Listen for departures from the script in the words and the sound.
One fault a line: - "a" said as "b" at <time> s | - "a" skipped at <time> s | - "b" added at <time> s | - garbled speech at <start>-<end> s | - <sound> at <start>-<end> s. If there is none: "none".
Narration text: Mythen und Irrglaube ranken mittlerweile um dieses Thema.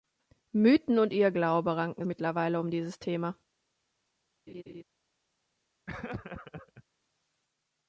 - laugh at 4.5-4.8 s
- laugh at 5.9-6.8 s